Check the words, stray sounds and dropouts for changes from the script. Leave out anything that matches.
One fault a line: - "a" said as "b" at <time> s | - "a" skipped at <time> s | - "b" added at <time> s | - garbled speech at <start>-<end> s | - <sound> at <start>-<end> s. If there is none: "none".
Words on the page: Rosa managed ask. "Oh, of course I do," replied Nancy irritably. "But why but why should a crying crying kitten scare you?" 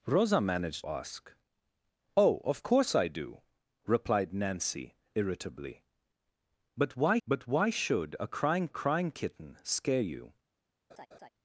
- laugh at 10.9-11.3 s